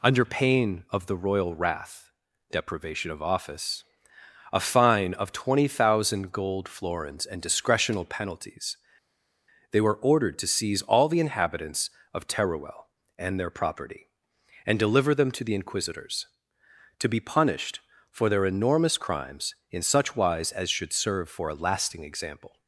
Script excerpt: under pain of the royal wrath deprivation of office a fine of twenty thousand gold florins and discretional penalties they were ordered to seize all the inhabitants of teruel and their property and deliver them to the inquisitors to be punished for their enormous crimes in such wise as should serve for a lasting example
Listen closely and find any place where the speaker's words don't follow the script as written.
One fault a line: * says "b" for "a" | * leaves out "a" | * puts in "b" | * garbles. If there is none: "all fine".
all fine